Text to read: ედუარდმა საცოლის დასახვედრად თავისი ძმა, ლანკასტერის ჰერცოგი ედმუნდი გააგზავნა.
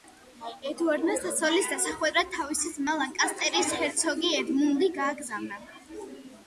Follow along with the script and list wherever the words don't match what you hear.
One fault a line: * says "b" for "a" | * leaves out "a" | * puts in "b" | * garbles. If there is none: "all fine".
all fine